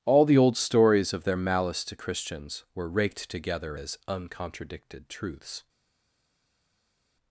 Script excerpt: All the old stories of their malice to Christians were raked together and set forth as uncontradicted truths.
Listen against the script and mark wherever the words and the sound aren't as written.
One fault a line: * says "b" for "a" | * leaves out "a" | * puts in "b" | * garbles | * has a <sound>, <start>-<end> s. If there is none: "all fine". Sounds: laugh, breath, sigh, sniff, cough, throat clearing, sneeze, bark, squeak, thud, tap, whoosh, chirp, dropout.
* leaves out "and set forth"